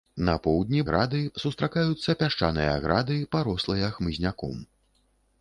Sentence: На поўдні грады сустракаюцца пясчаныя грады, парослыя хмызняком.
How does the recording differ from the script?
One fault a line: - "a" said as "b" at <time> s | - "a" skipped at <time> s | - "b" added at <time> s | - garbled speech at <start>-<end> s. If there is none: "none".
none